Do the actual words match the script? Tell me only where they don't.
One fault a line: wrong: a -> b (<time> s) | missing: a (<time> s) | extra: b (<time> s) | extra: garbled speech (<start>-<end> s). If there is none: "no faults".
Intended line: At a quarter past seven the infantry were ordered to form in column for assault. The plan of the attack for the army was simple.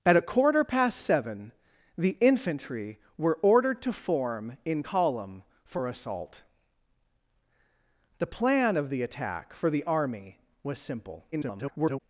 extra: garbled speech (11.3-12.0 s)